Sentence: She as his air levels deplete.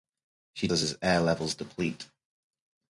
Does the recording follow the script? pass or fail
pass